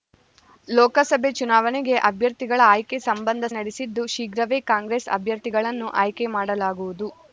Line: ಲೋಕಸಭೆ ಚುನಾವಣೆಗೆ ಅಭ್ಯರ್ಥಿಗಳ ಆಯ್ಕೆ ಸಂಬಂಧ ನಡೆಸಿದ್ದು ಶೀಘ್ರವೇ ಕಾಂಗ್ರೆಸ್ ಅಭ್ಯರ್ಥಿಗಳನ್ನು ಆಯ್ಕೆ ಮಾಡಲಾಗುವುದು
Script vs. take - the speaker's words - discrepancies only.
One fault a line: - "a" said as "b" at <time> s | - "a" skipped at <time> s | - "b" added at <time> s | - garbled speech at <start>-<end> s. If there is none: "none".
none